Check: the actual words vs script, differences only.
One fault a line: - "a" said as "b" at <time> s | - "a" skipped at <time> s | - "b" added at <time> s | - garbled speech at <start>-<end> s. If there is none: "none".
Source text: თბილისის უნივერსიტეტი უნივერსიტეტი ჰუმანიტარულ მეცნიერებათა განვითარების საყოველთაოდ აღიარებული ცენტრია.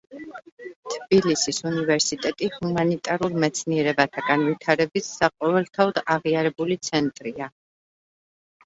- "უნივერსიტეტი" skipped at 2.5 s